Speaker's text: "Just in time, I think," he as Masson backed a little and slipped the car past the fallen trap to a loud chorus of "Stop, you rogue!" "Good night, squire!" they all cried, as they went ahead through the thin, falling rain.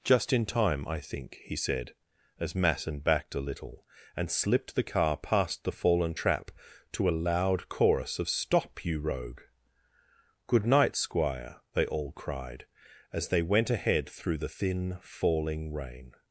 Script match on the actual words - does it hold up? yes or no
no